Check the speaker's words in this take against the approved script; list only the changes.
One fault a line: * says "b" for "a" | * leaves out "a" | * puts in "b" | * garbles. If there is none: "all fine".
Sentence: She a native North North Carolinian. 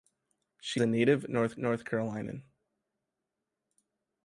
all fine